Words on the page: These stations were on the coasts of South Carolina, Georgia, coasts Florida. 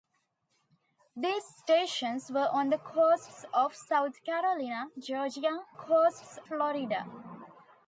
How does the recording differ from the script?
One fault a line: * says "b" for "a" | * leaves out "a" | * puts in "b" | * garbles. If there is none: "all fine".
all fine